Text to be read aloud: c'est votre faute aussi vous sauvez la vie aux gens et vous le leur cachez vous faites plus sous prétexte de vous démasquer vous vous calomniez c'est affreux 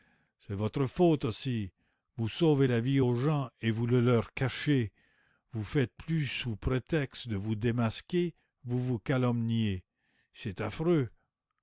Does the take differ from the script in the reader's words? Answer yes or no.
no